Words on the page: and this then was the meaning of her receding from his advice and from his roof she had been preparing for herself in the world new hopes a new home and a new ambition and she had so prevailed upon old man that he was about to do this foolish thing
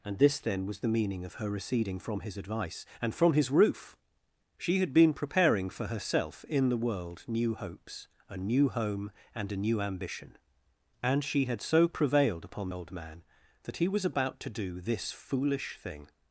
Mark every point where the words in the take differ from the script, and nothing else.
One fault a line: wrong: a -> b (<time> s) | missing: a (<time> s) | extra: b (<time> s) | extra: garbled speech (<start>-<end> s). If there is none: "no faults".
no faults